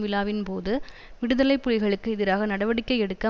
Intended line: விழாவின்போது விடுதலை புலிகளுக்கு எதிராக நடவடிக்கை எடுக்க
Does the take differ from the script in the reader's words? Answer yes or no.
no